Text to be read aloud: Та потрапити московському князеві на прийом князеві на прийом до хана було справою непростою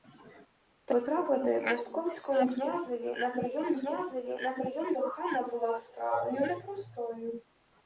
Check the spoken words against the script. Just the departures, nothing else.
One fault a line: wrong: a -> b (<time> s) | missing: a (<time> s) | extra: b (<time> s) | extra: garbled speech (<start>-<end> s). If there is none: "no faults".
no faults